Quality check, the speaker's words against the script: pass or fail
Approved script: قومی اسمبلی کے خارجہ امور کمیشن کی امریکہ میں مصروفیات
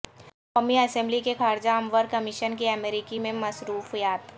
pass